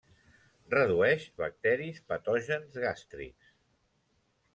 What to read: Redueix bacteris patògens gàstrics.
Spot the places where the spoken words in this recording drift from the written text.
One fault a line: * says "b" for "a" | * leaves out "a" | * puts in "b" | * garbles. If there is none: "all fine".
all fine